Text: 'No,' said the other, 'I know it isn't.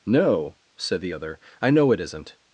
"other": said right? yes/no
yes